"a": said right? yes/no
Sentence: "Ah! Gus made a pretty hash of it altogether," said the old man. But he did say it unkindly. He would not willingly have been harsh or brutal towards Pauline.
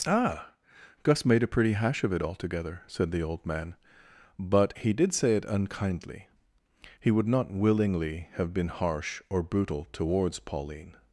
yes